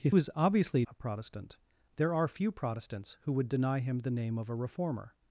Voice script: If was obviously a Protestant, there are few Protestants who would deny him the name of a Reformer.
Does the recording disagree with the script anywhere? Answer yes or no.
no